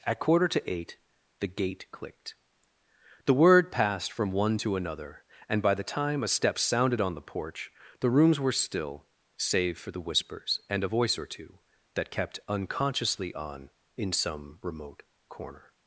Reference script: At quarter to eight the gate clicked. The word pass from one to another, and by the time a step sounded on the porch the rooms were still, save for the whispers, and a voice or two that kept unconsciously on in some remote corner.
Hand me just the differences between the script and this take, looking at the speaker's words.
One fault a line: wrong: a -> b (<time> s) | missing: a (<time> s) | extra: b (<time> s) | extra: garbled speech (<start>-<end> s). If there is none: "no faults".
wrong: pass -> passed (3.7 s)